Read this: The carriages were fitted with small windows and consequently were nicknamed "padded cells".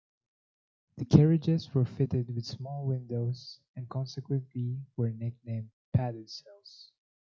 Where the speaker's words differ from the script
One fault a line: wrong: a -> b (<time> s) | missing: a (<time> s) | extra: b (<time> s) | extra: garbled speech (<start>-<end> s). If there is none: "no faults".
no faults